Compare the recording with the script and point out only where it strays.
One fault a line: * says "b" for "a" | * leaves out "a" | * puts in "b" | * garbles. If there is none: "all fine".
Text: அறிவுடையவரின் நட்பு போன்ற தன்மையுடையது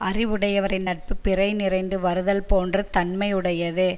* puts in "பிறை நிறைந்து வருதல்"